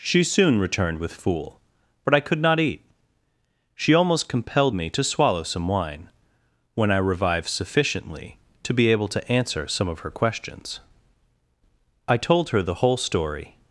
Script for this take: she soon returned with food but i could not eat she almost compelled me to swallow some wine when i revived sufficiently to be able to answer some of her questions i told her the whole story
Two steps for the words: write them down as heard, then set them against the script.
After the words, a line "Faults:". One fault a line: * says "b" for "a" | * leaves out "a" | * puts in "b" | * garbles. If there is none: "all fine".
she soon returned with fool but i could not eat she almost compelled me to swallow some wine when i revived sufficiently to be able to answer some of her questions i told her the whole story
Faults:
* says "fool" for "food"